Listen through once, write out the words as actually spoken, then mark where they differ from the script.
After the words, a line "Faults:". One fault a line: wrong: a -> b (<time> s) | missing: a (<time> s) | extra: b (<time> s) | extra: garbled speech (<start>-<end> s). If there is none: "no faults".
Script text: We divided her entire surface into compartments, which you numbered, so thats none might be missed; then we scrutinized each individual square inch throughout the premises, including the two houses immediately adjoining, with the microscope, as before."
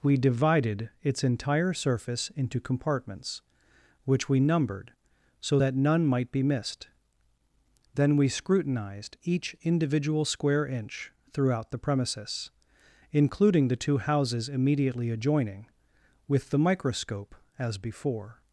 We divided its entire surface into compartments, which we numbered, so that none might be missed; then we scrutinized each individual square inch throughout the premises, including the two houses immediately adjoining, with the microscope, as before."
Faults:
wrong: her -> its (1.0 s)
wrong: you -> we (4.3 s)
wrong: thats -> that (5.6 s)